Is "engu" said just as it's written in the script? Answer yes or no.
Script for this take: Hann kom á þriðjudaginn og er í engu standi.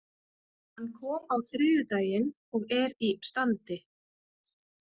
no